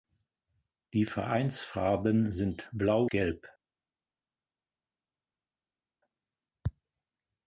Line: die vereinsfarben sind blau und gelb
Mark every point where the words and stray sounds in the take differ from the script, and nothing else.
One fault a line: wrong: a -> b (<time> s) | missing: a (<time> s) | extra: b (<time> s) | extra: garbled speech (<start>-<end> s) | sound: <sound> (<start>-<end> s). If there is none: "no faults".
missing: und (3.0 s)